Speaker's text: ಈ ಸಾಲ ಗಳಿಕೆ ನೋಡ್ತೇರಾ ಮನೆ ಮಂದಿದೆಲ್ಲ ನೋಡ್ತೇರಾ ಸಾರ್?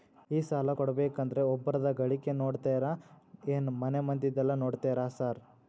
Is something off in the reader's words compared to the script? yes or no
yes